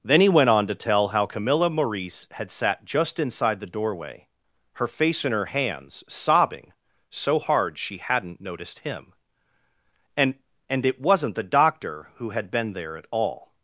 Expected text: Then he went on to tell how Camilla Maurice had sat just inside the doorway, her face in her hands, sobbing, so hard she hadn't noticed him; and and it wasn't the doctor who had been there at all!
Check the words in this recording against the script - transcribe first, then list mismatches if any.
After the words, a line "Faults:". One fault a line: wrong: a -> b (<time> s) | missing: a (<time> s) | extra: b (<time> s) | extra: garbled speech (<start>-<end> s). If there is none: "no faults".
Then he went on to tell how Camilla Maurice had sat just inside the doorway, her face in her hands, sobbing, so hard she hadn't noticed him; and and it wasn't the doctor who had been there at all!
Faults:
no faults